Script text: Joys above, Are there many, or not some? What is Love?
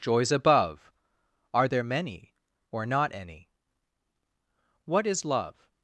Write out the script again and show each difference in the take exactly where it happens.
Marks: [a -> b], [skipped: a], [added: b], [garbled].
Joys above, Are there many, or not [some? -> any] What is Love?